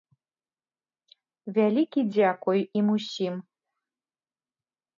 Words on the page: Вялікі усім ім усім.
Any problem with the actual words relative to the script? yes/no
yes